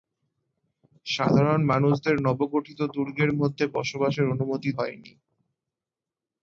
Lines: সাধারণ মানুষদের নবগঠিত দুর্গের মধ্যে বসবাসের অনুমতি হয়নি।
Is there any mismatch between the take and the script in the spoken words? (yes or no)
no